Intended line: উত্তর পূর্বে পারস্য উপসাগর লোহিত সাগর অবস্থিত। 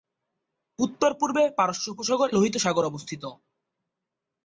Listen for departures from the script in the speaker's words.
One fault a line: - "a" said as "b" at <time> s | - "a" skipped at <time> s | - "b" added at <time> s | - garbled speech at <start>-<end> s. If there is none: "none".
none